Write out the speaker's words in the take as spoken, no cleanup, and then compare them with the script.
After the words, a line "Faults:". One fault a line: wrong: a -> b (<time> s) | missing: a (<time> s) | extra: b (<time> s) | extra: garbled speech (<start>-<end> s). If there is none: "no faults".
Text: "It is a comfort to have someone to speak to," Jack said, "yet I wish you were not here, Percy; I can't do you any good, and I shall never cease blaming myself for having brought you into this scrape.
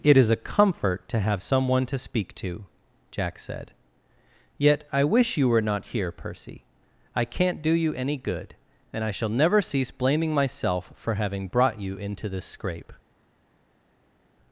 "It is a comfort to have someone to speak to," Jack said, "yet I wish you were not here, Percy; I can't do you any good, and I shall never cease blaming myself for having brought you into this scrape.
Faults:
no faults